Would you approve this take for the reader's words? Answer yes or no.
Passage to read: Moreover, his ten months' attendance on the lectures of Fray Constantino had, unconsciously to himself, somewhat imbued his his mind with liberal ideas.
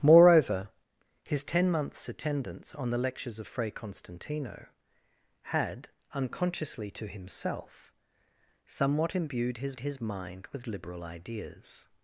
yes